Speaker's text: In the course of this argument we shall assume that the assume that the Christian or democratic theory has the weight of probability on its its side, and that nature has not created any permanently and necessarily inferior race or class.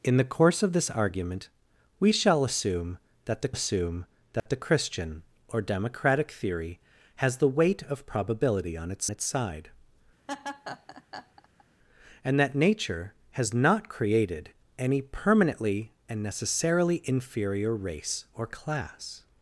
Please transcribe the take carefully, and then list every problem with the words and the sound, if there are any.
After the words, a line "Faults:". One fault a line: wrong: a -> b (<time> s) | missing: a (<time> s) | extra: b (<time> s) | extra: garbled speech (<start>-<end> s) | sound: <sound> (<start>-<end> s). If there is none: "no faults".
In the course of this argument we shall assume that the assume that the Christian or democratic theory has the weight of probability on its its side, and that nature has not created any permanently and necessarily inferior race or class.
Faults:
sound: dropout (4.4-4.5 s)
sound: laugh (10.3-11.6 s)